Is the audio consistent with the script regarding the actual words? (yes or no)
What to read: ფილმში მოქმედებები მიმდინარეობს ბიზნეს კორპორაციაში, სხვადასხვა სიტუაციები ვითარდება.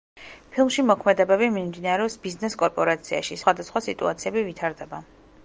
yes